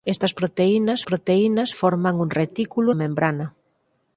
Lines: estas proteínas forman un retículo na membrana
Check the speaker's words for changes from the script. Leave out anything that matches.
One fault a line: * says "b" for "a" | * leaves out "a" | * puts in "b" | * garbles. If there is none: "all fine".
* puts in "proteínas"
* leaves out "na"